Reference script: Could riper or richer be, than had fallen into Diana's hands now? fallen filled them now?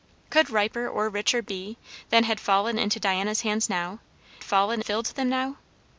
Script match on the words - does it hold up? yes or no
yes